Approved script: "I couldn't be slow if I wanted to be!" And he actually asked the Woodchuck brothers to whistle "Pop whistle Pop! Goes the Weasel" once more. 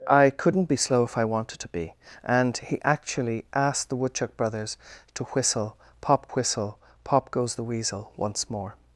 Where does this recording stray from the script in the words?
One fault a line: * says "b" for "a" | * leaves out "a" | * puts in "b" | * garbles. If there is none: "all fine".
all fine